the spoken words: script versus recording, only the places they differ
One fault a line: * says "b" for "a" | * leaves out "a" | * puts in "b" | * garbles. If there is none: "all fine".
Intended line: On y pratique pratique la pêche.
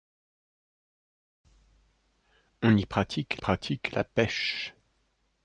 all fine